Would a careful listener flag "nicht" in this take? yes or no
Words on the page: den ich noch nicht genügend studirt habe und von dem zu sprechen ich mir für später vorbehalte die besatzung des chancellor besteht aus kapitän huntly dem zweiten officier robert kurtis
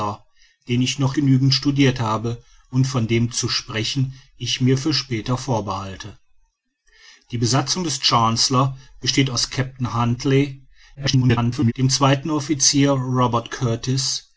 yes